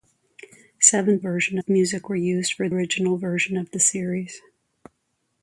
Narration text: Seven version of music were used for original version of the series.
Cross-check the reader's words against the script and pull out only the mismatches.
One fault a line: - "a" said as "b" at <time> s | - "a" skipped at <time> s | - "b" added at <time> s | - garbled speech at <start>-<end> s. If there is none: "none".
none